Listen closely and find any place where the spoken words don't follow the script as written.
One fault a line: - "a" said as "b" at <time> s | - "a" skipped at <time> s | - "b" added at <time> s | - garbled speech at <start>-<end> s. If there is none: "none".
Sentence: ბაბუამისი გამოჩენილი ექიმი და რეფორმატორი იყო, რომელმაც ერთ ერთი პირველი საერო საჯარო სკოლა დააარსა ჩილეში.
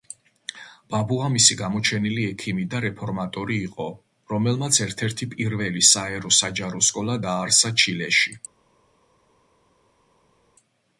none